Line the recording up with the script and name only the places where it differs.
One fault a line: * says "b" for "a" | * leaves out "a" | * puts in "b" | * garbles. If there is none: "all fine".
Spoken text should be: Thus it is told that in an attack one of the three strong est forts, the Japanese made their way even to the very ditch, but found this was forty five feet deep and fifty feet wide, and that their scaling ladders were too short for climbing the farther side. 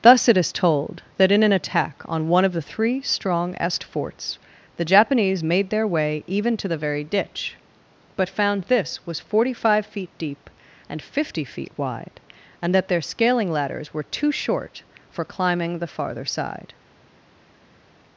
* puts in "on"